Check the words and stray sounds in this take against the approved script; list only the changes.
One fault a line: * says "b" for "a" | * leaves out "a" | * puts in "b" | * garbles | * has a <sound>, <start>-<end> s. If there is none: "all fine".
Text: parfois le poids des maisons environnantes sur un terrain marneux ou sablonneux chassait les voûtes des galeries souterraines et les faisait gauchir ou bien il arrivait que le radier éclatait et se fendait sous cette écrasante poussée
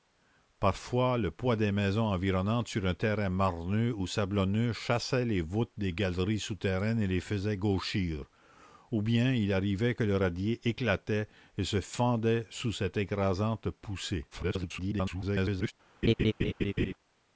* garbles
* has a laugh, 16.0-16.9 s